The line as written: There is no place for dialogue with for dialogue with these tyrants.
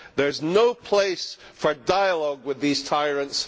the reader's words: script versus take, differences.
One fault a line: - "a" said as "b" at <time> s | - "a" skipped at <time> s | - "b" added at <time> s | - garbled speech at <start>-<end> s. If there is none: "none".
- "for dialogue with" skipped at 2.6 s